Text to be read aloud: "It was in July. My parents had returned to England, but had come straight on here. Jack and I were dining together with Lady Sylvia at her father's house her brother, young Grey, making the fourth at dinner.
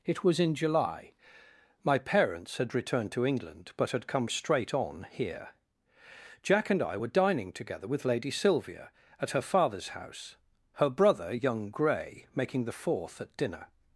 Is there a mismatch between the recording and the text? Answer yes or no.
no